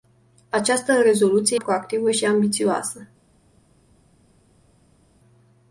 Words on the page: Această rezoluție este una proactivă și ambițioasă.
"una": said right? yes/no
no